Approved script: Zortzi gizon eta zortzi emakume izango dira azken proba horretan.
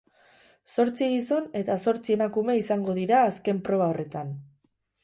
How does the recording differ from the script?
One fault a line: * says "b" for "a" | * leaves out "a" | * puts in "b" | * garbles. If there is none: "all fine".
all fine